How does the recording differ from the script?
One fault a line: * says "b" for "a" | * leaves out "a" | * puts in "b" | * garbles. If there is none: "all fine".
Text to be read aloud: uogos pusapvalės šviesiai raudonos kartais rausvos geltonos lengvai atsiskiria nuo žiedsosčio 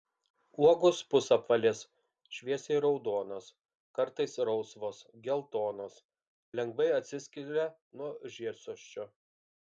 all fine